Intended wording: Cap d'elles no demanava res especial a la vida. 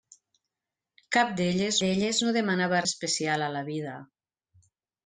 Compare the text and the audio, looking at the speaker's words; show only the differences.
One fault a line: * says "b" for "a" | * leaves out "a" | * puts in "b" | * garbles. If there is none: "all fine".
* puts in "d'elles"
* leaves out "res"